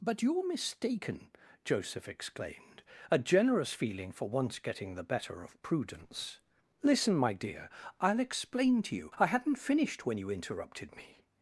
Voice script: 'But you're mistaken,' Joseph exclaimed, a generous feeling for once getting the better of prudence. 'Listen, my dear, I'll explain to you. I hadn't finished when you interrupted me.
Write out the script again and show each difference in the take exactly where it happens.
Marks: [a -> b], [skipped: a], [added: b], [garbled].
'But you're mistaken,' Joseph exclaimed, a generous feeling for once getting the better of prudence. 'Listen, my dear, I'll explain to you. I hadn't finished when you interrupted me.